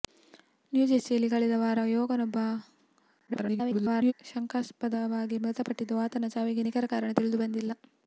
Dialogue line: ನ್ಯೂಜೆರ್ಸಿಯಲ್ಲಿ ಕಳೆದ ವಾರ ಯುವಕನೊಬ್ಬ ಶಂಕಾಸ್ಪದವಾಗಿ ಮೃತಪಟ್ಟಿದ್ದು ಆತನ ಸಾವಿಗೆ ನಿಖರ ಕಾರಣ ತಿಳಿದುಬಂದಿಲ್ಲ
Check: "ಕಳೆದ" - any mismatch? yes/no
no